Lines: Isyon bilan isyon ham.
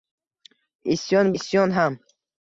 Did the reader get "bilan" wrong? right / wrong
wrong